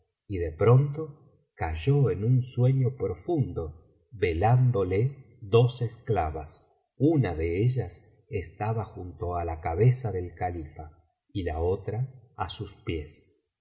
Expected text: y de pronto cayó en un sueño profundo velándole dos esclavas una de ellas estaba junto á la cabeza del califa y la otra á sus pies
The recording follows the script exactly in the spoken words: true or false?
true